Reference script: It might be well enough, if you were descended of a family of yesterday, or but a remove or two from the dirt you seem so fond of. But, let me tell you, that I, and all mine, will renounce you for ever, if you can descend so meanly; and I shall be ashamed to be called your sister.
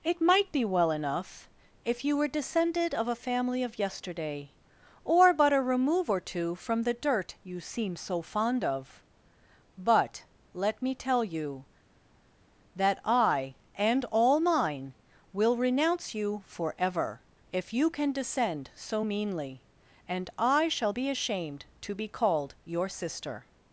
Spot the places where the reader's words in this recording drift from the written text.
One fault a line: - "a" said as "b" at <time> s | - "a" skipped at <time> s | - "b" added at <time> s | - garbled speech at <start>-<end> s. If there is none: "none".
none